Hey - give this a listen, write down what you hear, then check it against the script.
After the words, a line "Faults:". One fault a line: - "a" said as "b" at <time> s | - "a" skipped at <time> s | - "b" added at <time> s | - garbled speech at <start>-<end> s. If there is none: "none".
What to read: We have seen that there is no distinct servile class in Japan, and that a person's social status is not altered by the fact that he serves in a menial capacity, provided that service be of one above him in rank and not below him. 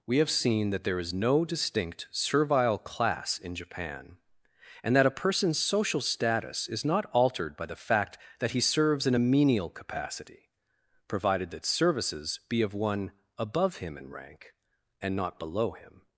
We have seen that there is no distinct servile class in Japan, and that a person's social status is not altered by the fact that he serves in a menial capacity, provided that services be of one above him in rank and not below him.
Faults:
- "service" said as "services" at 11.6 s